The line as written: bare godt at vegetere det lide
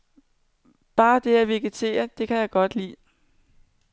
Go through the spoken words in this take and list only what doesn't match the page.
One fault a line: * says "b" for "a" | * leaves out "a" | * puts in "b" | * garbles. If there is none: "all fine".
* says "det" for "godt"
* puts in "kan jeg godt"